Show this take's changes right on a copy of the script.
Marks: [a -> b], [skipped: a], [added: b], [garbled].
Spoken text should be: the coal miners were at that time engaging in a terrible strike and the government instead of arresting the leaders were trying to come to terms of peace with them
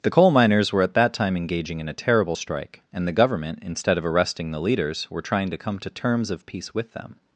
the coal miners were at that time engaging in a terrible strike and the government instead of arresting the leaders were trying to come to terms of peace with them